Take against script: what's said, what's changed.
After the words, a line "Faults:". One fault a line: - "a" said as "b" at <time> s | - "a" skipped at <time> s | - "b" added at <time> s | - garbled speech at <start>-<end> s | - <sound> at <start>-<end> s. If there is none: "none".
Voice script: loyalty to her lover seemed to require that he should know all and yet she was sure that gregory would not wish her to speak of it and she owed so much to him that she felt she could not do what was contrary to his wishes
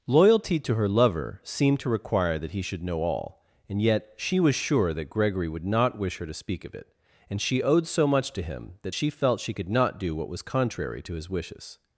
loyalty to her lover seemed to require that he should know all and yet she was sure that gregory would not wish her to speak of it and she owed so much to him that she felt she could not do what was contrary to his wishes
Faults:
none